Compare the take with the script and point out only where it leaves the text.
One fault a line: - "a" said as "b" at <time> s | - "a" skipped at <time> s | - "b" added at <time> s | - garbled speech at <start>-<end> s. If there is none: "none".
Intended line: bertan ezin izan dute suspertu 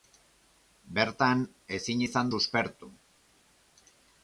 - "dute" skipped at 2.3 s